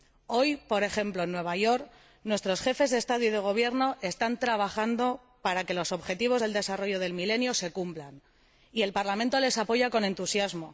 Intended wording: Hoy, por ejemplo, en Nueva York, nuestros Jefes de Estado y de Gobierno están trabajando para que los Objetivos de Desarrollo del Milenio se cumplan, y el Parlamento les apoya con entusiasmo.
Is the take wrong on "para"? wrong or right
right